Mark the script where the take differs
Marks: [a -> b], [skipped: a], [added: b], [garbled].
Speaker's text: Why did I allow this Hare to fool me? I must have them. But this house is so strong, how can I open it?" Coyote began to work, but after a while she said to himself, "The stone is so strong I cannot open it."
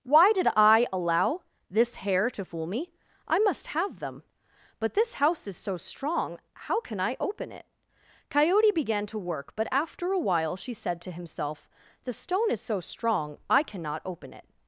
Why did I allow this Hare to fool me? I must have them. But this house is so strong, how can I open it?" Coyote began to work, but after a while she said to himself, "The stone is so strong I cannot open it."